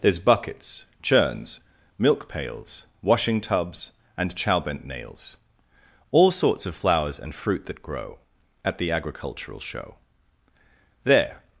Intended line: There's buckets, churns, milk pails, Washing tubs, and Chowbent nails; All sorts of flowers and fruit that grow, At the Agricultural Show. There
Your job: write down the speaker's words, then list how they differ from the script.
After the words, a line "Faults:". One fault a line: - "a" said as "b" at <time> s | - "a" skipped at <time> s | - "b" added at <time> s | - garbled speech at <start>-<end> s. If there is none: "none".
There's buckets, churns, milk pails, Washing tubs, and Chowbent nails; All sorts of flowers and fruit that grow, At the Agricultural Show. There
Faults:
none